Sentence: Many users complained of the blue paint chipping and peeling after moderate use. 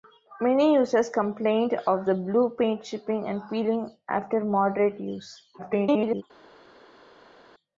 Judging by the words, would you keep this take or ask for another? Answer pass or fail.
fail